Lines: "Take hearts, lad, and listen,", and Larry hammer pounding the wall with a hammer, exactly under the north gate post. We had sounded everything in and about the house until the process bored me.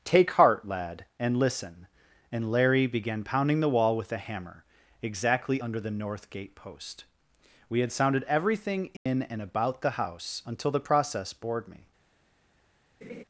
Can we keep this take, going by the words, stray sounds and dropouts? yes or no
no